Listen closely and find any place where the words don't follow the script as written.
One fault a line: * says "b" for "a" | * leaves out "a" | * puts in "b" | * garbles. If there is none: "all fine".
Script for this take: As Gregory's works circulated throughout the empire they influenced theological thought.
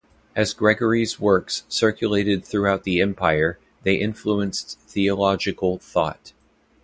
all fine